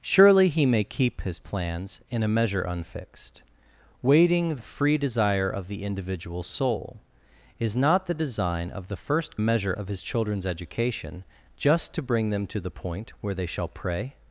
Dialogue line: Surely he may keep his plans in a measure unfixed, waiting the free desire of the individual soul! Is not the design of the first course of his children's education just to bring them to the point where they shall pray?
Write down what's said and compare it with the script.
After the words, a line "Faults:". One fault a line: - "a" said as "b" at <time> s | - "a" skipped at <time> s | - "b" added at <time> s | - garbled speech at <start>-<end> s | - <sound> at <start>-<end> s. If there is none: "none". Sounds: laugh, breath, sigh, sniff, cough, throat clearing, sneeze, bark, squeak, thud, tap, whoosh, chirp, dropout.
Surely he may keep his plans in a measure unfixed, waiting the free desire of the individual soul! Is not the design of the first measure of his children's education just to bring them to the point where they shall pray?
Faults:
- "course" said as "measure" at 9.4 s